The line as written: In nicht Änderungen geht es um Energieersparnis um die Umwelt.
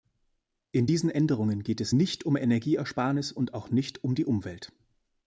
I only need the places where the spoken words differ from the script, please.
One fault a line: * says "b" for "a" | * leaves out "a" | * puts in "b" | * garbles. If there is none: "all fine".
* says "diesen" for "nicht"
* puts in "nicht"
* puts in "und auch nicht"